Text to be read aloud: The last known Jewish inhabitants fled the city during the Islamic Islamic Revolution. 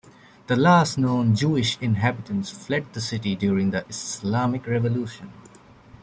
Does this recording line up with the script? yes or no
no